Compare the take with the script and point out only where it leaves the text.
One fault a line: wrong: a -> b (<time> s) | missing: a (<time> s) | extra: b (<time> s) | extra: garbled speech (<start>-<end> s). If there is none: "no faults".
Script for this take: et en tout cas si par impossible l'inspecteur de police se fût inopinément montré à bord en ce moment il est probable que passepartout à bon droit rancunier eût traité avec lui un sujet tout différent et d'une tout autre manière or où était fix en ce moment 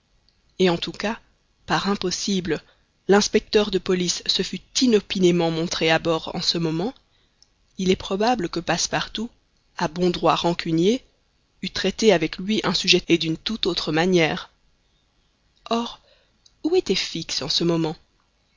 missing: si (1.2 s)
missing: tout différent (13.0 s)